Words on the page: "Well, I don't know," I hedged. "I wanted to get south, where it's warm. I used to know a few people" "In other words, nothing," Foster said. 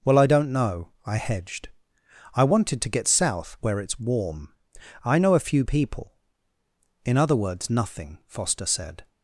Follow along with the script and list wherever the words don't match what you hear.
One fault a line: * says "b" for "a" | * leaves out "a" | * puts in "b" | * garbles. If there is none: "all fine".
* leaves out "used to"